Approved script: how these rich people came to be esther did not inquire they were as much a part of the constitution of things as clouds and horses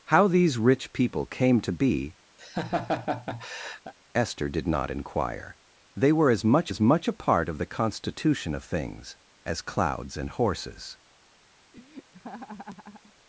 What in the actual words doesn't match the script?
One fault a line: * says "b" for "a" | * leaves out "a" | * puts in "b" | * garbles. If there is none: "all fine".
* puts in "as much"